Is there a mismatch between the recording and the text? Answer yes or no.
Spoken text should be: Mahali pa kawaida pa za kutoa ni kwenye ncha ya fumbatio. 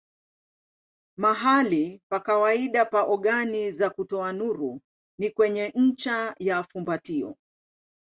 yes